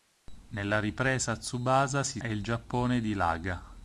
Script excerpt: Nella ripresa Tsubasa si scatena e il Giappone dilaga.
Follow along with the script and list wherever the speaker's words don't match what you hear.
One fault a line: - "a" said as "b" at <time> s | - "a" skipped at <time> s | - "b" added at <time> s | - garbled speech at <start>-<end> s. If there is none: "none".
- "scatena" skipped at 2.2 s